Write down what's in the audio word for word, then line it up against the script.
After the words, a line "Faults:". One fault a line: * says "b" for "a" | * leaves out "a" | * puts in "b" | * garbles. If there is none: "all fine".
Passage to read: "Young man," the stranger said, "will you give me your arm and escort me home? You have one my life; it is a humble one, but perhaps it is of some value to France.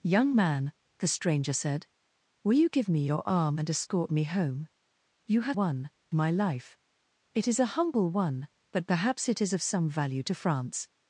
"Young man," the stranger said, "will you give me your arm and escort me home? You have one my life; it is a humble one, but perhaps it is of some value to France.
Faults:
all fine